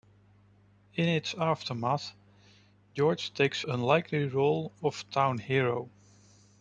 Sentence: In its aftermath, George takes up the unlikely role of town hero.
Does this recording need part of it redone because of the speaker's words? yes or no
yes